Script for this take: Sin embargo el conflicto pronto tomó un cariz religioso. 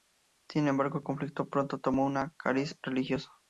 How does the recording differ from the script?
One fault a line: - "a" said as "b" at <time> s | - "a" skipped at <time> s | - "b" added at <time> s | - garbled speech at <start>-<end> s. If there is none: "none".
none